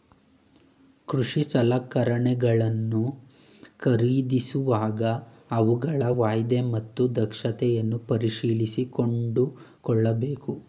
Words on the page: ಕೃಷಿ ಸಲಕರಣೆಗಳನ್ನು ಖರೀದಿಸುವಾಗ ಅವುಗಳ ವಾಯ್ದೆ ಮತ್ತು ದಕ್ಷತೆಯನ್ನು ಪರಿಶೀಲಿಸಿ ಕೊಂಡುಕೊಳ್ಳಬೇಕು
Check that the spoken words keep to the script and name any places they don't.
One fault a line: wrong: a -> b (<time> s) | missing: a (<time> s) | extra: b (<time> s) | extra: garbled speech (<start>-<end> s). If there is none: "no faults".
no faults